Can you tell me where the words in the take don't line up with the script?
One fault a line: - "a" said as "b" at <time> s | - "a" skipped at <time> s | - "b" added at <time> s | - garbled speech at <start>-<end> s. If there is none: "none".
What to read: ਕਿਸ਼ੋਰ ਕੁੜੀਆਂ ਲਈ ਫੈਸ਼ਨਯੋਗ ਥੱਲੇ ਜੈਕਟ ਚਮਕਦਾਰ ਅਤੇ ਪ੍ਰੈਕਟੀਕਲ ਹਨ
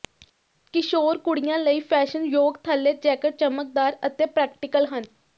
none